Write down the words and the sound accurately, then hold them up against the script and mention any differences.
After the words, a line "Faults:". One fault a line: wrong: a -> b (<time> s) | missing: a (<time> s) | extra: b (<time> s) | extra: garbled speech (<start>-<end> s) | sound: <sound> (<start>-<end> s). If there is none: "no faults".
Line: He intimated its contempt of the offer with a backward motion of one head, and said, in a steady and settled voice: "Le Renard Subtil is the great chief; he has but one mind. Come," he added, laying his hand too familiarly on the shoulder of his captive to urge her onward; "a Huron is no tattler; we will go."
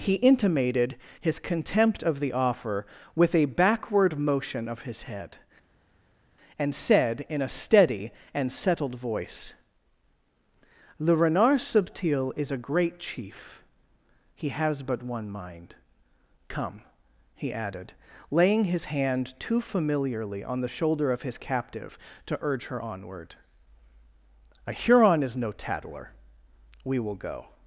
He intimated his contempt of the offer with a backward motion of his head, and said, in a steady and settled voice: "Le Renard Subtil is a great chief; he has but one mind. Come," he added, laying his hand too familiarly on the shoulder of his captive to urge her onward; "a Huron is no tattler; we will go."
Faults:
wrong: its -> his (1.2 s)
wrong: one -> his (4.8 s)
wrong: the -> a (12.5 s)